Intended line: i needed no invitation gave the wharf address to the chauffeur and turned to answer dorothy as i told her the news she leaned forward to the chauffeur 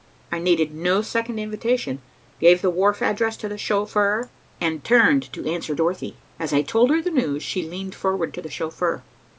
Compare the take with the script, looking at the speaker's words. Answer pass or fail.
fail